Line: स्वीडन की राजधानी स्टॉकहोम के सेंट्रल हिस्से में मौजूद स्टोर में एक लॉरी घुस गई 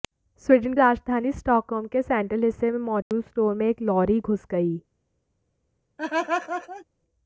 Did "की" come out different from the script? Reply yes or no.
yes